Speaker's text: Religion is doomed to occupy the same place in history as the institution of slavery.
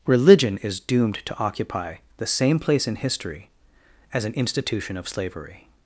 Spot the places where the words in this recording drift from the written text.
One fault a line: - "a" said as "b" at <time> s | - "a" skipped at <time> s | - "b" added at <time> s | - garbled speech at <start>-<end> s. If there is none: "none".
- "the" said as "an" at 4.2 s